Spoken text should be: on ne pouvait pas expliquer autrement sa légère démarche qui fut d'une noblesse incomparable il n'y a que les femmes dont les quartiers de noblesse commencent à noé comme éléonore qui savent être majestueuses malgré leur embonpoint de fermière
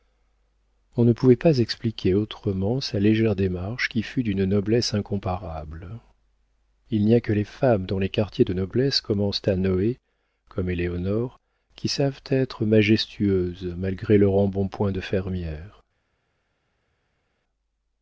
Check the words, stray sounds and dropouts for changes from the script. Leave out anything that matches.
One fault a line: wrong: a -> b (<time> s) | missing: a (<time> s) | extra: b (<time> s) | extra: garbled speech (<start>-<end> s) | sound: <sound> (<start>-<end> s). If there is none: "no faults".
no faults